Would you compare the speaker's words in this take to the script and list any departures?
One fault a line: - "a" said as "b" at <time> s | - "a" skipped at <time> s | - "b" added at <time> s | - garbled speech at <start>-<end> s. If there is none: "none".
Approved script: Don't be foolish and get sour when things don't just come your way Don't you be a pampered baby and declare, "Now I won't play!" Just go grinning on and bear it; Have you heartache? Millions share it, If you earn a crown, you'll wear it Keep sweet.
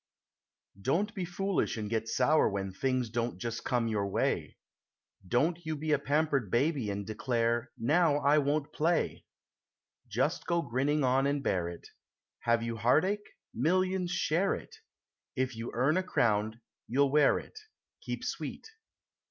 none